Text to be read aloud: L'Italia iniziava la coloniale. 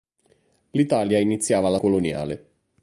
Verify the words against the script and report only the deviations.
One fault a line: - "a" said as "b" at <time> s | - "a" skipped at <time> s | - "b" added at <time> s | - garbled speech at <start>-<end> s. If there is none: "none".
none